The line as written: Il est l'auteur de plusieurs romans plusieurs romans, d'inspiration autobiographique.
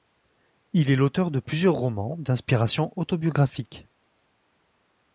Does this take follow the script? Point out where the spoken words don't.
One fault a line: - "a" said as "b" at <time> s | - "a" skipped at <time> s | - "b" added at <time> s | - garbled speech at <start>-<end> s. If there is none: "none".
- "plusieurs romans" skipped at 2.2 s